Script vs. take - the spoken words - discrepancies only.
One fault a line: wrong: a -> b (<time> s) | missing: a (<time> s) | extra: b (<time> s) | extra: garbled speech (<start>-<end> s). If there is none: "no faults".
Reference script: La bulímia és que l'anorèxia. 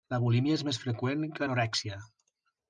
extra: més freqüent (0.7 s)